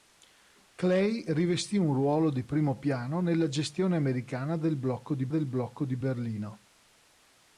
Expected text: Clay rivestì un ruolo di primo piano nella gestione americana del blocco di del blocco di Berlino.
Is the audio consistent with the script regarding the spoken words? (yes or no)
yes